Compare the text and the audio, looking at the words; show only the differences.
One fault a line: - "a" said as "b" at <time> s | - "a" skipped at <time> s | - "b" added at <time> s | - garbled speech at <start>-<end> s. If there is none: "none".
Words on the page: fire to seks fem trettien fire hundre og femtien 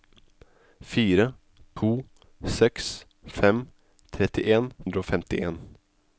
- "fire" skipped at 4.7 s